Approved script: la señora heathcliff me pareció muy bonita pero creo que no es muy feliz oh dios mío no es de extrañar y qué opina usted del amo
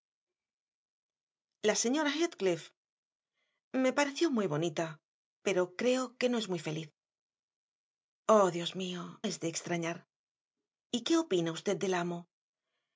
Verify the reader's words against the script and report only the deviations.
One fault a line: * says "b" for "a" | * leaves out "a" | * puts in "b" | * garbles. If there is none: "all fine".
* leaves out "no"